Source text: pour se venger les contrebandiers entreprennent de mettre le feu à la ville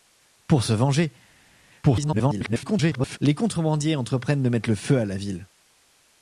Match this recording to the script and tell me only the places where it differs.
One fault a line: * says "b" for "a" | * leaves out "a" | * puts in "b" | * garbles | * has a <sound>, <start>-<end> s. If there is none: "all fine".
* garbles